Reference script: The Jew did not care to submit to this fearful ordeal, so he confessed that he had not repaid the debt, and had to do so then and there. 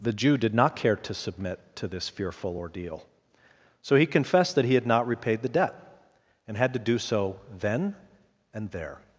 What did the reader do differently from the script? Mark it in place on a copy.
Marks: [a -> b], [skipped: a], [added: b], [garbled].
The Jew did not care to submit to this fearful ordeal, so he confessed that he had not repaid the debt, and had to do so then and there.